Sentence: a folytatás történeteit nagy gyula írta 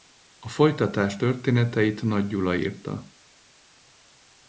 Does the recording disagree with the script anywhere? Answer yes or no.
no